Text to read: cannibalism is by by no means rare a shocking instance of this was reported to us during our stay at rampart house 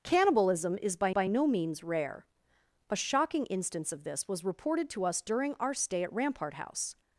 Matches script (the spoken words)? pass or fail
pass